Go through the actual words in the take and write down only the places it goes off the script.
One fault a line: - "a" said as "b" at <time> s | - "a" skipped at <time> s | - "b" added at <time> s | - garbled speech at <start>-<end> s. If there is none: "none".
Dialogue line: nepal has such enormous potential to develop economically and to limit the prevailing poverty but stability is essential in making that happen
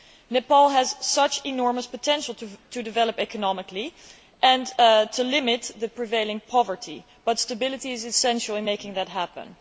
none